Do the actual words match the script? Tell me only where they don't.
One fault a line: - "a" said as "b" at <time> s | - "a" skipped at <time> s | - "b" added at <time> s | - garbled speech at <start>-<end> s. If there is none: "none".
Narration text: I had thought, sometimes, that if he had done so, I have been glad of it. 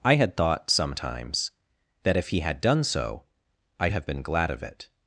none